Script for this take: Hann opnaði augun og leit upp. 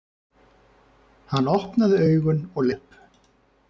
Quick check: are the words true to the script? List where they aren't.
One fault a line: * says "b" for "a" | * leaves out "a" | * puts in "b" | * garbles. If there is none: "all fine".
* leaves out "leit"